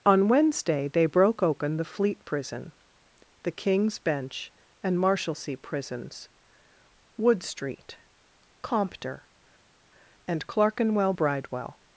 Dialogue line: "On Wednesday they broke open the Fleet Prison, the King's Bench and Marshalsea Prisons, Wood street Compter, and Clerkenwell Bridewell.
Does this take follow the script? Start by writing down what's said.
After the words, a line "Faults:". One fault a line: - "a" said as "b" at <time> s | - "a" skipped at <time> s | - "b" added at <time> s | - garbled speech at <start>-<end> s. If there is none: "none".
"On Wednesday they broke open the Fleet Prison, the King's Bench and Marshalsea Prisons, Wood street Compter, and Clerkenwell Bridewell.
Faults:
none